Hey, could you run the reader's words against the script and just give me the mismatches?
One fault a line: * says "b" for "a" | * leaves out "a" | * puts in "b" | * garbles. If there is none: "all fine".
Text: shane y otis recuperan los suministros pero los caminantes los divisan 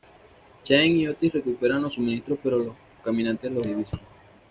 all fine